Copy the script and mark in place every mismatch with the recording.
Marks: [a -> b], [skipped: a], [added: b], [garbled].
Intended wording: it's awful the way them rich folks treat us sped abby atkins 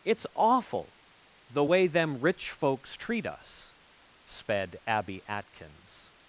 it's awful the way them rich folks treat us sped abby atkins